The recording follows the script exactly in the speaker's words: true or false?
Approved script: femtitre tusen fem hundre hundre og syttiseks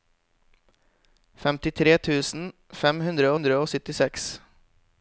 true